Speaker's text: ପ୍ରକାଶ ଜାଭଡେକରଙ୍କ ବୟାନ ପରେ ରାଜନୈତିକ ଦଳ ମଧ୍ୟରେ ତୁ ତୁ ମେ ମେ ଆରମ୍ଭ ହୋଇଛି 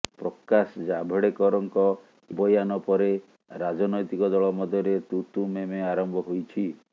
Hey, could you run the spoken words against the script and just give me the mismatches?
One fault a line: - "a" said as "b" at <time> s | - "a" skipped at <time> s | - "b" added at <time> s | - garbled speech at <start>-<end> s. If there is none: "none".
none